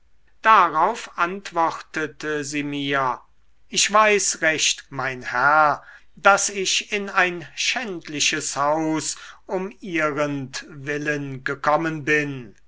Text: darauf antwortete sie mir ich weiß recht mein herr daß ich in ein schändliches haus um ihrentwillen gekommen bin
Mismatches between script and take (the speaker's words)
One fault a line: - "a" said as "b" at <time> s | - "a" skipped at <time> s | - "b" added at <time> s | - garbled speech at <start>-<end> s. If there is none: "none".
none